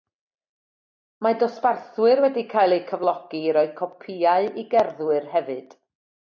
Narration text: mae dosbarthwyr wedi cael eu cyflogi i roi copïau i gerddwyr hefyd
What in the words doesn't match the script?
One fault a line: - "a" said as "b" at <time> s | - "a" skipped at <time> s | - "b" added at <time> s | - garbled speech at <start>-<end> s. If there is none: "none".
none